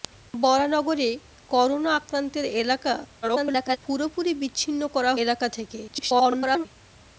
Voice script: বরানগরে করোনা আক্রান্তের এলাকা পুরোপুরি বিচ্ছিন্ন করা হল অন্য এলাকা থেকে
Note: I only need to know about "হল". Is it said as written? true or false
false